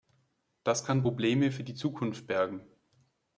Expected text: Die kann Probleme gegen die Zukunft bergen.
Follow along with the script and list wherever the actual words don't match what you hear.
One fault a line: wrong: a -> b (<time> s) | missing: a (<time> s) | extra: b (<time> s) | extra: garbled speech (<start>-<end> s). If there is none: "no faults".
wrong: Die -> Das (0.6 s)
wrong: gegen -> für (1.5 s)